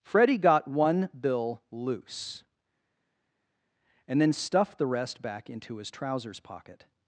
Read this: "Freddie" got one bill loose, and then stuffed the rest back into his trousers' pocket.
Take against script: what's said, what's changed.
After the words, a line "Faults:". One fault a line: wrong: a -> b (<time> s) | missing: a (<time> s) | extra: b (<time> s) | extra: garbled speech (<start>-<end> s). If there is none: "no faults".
"Freddie" got one bill loose, and then stuffed the rest back into his trousers' pocket.
Faults:
no faults